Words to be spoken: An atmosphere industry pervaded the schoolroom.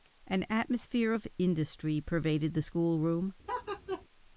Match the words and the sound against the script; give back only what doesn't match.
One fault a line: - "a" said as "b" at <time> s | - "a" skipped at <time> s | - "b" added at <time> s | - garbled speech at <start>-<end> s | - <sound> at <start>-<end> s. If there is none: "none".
- "of" added at 1.1 s
- laugh at 3.5-4.0 s